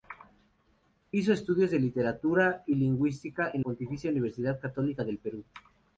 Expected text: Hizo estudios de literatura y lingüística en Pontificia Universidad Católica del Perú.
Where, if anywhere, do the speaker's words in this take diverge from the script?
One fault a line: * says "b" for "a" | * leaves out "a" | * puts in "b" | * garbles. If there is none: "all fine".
all fine